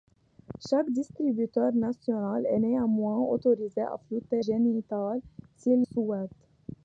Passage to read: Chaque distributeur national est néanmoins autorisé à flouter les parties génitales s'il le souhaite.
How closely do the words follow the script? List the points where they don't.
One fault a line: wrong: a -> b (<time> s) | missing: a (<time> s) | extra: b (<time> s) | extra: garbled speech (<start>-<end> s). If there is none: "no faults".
missing: les parties (4.4 s)
missing: le (5.8 s)